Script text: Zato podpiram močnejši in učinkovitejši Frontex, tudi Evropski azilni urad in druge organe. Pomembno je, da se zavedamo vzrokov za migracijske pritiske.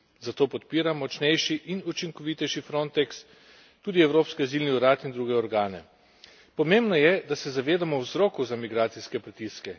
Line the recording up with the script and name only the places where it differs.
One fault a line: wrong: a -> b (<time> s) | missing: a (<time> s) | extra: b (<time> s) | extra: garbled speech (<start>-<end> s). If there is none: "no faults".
no faults